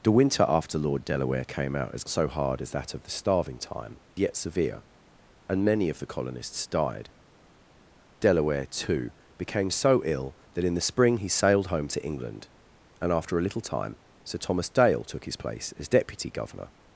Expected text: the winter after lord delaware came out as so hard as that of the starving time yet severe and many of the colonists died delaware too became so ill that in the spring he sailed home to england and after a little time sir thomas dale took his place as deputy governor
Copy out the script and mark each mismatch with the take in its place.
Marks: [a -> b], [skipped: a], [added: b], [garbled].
the winter after lord delaware came out as so hard as that of the starving time yet severe and many of the colonists died delaware too became so ill that in the spring he sailed home to england and after a little time sir thomas dale took his place as deputy governor